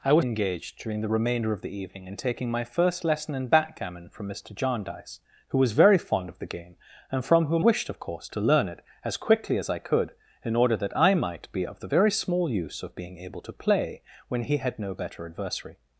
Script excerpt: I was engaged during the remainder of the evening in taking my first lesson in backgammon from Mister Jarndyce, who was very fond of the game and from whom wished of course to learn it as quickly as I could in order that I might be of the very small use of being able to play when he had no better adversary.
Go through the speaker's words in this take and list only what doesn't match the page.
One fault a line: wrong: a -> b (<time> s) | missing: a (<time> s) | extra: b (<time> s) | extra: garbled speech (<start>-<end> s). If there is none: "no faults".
no faults